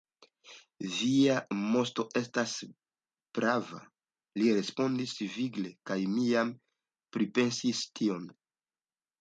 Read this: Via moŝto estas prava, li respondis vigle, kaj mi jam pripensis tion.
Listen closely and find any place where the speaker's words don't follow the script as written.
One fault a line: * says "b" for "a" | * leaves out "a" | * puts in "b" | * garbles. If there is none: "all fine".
all fine